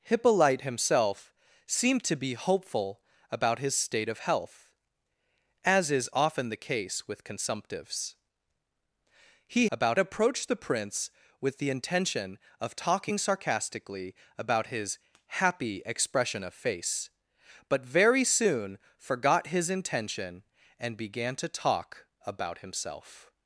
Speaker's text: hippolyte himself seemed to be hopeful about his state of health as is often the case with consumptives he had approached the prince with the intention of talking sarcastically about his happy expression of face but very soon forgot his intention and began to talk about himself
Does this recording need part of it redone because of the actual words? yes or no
yes